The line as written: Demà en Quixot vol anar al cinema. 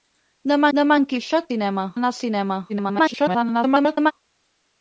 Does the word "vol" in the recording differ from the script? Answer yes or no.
yes